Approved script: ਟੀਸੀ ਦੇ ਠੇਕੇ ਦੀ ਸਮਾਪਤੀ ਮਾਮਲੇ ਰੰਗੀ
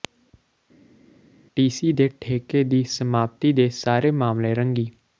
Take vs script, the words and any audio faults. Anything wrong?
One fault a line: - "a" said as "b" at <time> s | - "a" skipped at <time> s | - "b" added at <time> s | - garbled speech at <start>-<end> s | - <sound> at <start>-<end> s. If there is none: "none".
- "ਦੇ ਸਾਰੇ" added at 3.5 s